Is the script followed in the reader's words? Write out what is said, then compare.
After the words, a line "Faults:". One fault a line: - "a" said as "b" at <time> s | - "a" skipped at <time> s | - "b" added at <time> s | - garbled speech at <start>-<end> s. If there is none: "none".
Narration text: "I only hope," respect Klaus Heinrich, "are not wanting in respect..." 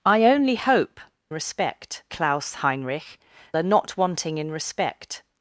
"I only hope," respect Klaus Heinrich, "are not wanting in respect..."
Faults:
none